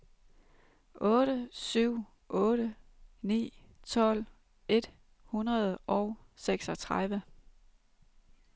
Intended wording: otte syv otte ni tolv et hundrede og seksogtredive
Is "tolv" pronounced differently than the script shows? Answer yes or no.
no